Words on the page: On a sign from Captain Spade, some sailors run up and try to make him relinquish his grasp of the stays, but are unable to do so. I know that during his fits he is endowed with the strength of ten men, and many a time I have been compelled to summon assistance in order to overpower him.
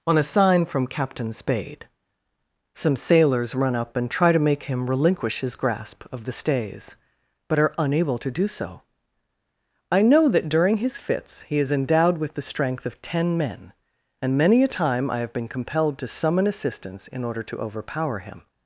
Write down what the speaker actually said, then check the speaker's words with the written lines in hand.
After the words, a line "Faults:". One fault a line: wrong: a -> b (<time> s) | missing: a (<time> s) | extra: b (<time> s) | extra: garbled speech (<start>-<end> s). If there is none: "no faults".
On a sign from Captain Spade, some sailors run up and try to make him relinquish his grasp of the stays, but are unable to do so. I know that during his fits he is endowed with the strength of ten men, and many a time I have been compelled to summon assistance in order to overpower him.
Faults:
no faults